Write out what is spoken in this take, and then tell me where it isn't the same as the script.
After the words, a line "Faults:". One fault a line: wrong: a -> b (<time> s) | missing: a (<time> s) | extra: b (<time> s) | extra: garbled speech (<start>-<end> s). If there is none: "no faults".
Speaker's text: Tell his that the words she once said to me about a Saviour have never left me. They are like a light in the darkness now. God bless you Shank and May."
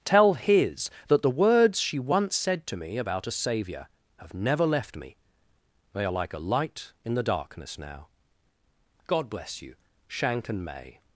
Tell his that the words she once said to me about a Saviour have never left me. They are like a light in the darkness now. God bless you Shank and May."
Faults:
no faults